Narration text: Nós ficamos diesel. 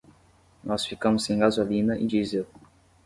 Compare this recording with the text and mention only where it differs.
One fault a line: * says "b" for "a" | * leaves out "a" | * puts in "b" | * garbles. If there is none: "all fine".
* puts in "sem gasolina e"